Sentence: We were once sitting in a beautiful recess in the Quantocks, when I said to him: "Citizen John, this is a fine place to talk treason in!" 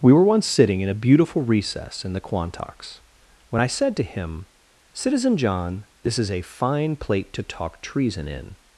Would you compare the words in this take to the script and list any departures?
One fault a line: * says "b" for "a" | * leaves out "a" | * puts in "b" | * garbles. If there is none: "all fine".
* says "plate" for "place"